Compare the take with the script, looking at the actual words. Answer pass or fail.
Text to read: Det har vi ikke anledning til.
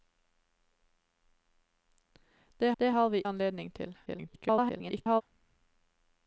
fail